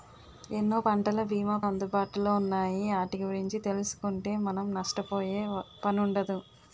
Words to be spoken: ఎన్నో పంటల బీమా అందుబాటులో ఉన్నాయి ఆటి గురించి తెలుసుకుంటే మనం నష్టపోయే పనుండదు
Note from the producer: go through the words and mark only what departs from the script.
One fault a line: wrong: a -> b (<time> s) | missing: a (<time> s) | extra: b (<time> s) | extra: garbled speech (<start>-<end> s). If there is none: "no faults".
no faults